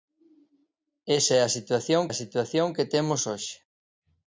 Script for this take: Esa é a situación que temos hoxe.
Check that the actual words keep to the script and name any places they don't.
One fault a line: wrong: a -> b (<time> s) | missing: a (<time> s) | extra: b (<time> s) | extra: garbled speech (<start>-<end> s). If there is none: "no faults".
extra: a situación (2.1 s)